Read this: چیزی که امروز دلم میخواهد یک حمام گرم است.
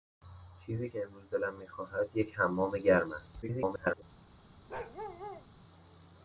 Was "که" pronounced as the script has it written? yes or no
yes